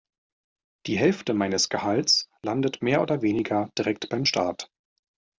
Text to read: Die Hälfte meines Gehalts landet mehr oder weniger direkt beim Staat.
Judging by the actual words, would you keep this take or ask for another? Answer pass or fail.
pass